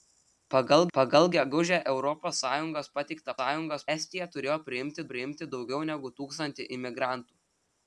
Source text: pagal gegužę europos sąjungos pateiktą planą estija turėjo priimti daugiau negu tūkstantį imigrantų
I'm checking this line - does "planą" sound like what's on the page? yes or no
no